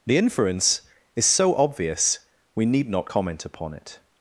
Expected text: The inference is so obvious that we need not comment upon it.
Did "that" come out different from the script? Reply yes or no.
yes